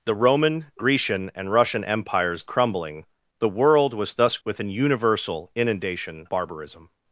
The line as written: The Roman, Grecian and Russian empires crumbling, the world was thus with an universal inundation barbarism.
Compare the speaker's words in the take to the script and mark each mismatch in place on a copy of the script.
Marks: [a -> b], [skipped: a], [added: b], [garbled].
The Roman, Grecian and Russian empires crumbling, the world was thus with an universal inundation barbarism.